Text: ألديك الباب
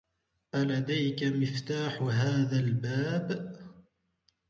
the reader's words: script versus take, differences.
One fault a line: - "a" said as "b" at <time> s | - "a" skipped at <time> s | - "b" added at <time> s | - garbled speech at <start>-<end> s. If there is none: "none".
- "مفتاح هذا" added at 1.2 s